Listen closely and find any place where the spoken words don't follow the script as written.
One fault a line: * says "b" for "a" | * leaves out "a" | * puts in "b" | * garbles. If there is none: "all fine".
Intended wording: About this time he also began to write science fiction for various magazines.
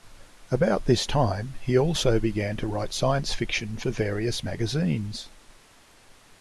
all fine